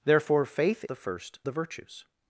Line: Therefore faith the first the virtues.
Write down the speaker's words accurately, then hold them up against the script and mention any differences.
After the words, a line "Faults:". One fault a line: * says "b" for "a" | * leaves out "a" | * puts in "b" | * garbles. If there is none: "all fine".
Therefore faith the first the virtues.
Faults:
all fine